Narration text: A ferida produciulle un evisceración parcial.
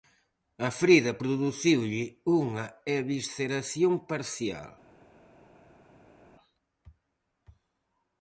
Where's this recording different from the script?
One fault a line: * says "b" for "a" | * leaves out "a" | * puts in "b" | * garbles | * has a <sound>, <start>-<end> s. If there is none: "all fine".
* says "unha" for "un"